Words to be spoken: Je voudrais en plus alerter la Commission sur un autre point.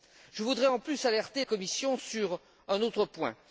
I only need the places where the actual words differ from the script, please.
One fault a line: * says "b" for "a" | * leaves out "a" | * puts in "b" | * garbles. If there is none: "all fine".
* leaves out "la"